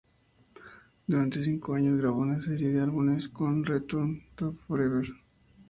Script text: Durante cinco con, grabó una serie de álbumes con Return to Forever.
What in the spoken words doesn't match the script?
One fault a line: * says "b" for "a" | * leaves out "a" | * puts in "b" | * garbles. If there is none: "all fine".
* says "años" for "con"